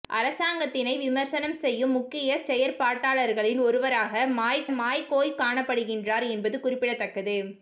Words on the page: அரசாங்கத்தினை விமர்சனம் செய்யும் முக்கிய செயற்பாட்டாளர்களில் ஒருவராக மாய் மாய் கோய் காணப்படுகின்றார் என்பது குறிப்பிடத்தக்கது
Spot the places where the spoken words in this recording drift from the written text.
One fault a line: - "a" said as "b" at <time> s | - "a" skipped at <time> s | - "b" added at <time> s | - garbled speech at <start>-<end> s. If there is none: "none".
none